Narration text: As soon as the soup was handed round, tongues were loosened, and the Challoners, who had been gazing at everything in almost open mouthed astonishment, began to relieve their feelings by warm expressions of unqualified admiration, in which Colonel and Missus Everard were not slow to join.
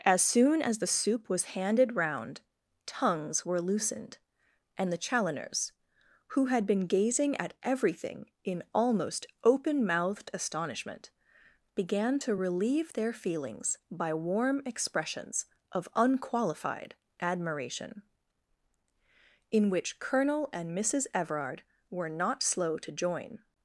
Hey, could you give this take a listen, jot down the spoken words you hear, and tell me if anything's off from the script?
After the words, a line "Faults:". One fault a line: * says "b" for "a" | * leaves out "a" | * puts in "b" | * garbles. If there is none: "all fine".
As soon as the soup was handed round, tongues were loosened, and the Challoners, who had been gazing at everything in almost open mouthed astonishment, began to relieve their feelings by warm expressions of unqualified admiration, in which Colonel and Missus Everard were not slow to join.
Faults:
all fine